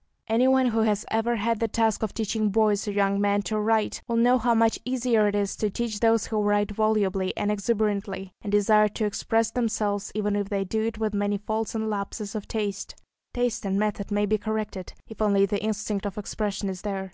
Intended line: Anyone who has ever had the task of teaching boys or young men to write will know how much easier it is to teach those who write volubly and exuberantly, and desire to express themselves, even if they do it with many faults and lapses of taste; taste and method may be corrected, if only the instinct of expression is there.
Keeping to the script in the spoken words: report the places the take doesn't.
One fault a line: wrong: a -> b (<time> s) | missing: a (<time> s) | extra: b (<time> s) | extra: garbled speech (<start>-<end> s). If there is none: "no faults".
no faults